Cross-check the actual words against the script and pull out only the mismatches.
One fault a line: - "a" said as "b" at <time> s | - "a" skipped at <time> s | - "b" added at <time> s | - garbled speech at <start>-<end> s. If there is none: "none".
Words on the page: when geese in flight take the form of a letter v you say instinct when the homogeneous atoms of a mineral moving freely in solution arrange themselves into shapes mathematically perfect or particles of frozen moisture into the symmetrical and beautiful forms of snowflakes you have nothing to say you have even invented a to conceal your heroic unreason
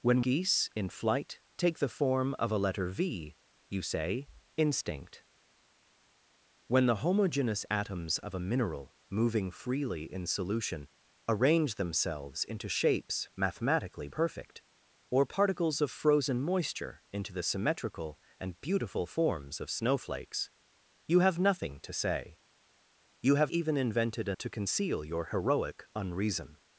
none